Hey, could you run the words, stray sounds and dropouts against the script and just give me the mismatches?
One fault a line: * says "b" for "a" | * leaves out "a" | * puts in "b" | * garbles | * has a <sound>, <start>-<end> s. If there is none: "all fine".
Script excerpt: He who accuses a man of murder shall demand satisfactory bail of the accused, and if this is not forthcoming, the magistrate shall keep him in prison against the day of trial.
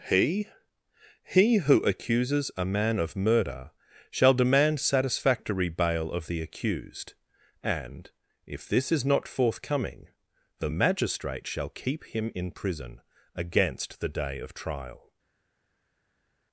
* puts in "he"